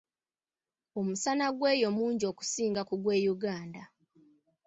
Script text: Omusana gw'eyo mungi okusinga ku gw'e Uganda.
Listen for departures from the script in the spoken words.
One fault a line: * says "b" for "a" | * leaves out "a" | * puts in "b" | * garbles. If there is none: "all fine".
all fine